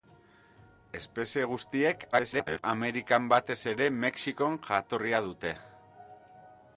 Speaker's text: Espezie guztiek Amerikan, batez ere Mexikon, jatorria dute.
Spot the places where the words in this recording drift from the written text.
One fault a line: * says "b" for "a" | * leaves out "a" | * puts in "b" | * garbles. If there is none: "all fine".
* garbles